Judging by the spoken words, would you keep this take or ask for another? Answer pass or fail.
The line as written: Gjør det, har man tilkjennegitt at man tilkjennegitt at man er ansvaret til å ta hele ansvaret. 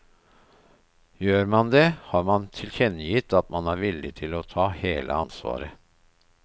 fail